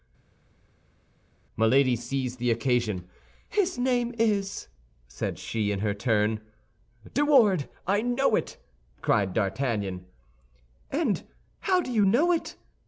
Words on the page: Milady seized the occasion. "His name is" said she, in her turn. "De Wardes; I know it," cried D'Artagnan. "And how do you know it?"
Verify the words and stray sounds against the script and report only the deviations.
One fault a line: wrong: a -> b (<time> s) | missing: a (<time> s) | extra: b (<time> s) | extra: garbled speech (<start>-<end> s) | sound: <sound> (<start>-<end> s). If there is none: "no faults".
no faults